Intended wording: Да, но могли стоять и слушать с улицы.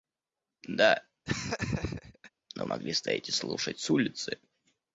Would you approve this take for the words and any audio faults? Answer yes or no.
no